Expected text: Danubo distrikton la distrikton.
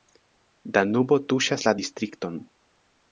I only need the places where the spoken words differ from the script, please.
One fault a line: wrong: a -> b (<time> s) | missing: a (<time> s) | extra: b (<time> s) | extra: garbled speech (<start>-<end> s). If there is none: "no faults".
wrong: distrikton -> tuŝas (1.3 s)